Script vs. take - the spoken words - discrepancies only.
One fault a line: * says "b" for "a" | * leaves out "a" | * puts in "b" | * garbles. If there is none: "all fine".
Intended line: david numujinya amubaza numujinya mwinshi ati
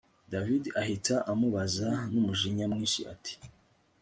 * says "ahita" for "numujinya"